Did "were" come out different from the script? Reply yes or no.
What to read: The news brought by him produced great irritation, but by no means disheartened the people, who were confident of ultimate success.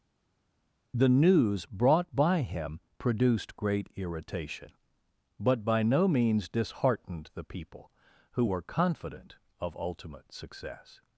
no